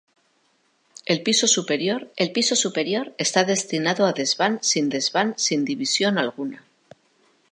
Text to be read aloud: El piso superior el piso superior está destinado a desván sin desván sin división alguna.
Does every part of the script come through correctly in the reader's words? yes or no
yes